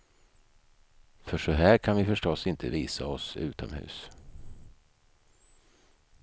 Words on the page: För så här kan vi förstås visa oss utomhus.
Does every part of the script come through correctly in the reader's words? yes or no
no